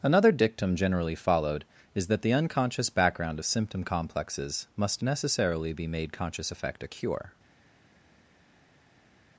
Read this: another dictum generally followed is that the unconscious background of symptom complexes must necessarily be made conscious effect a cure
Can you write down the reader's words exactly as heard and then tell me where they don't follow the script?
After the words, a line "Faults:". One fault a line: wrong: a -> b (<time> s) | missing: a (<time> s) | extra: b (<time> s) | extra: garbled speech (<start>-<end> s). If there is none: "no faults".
another dictum generally followed is that the unconscious background of symptom complexes must necessarily be made conscious effect a cure
Faults:
no faults